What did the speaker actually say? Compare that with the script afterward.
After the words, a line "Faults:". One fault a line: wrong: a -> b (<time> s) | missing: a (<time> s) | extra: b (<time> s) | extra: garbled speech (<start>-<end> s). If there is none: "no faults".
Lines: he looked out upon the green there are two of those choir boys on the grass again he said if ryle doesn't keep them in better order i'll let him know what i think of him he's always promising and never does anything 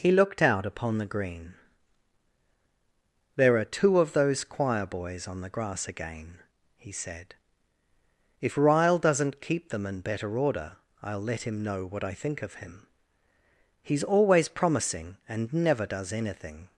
he looked out upon the green there are two of those choir boys on the grass again he said if ryle doesn't keep them in better order i'll let him know what i think of him he's always promising and never does anything
Faults:
no faults